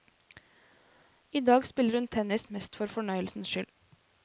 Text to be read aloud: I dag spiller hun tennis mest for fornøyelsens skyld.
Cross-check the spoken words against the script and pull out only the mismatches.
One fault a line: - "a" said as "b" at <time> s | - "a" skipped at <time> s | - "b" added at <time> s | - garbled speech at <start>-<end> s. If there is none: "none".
none